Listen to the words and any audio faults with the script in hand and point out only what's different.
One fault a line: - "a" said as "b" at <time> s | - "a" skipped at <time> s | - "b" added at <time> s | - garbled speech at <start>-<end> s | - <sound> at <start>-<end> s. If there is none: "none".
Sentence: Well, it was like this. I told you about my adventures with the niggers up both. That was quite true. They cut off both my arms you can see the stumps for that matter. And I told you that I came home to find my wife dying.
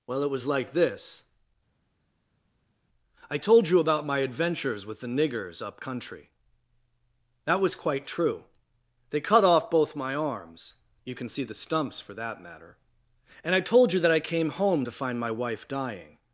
- "both" said as "country" at 5.8 s